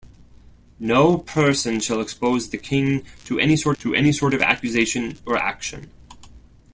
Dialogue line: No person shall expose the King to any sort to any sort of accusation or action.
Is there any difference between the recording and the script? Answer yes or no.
no